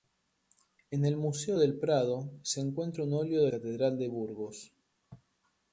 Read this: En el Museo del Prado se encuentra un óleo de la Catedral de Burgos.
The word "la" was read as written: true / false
false